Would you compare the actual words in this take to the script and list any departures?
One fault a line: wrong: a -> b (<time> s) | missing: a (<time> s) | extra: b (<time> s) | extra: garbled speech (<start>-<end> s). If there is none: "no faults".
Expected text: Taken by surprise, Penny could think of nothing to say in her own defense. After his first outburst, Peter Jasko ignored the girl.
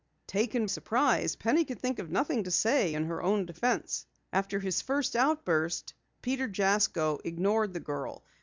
missing: by (0.7 s)